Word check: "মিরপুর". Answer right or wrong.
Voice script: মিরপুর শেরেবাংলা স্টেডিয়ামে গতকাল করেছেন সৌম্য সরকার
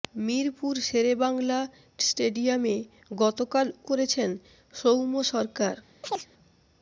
right